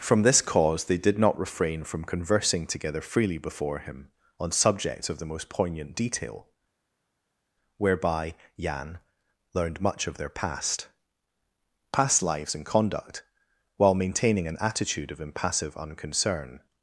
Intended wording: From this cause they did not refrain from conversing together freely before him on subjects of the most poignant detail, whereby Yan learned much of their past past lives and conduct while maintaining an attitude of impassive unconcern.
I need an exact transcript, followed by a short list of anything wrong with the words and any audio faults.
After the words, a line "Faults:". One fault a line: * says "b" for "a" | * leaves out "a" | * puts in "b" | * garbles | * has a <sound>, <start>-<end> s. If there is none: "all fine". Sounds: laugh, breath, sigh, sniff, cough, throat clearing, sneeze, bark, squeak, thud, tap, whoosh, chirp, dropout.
From this cause they did not refrain from conversing together freely before him on subjects of the most poignant detail, whereby Yan learned much of their past past lives and conduct while maintaining an attitude of impassive unconcern.
Faults:
all fine